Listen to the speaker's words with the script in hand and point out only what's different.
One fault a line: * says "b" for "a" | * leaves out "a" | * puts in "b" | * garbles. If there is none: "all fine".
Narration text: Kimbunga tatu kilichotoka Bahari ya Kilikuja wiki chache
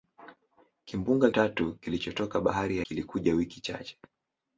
all fine